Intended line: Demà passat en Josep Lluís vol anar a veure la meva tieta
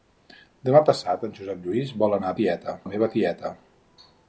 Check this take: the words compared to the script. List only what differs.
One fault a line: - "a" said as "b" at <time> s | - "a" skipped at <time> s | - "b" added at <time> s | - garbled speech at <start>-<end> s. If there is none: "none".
- "veure" said as "tieta" at 2.4 s